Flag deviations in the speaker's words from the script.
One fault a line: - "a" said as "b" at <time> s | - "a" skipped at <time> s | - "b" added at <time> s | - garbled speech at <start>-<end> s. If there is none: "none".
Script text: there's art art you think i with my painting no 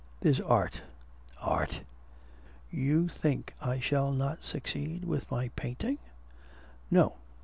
- "shall not succeed" added at 3.8 s